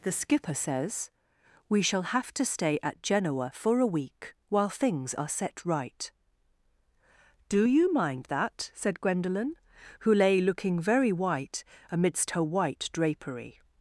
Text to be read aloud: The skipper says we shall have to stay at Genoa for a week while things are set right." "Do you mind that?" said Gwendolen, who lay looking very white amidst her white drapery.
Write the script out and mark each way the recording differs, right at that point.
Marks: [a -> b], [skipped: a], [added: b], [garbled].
The skipper says we shall have to stay at Genoa for a week while things are set right." "Do you mind that?" said Gwendolen, who lay looking very white amidst her white drapery.